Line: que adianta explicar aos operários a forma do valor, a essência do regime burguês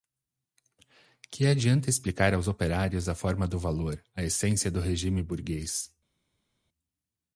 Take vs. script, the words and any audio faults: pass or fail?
pass